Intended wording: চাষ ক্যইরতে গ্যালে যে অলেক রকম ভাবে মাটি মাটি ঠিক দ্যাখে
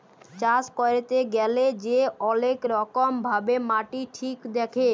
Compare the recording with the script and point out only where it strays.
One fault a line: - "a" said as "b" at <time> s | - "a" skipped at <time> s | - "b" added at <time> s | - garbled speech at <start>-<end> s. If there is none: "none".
- "মাটি" skipped at 4.0 s